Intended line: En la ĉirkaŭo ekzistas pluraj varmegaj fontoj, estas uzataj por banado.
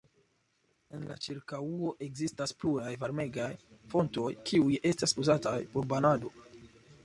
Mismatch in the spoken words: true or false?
true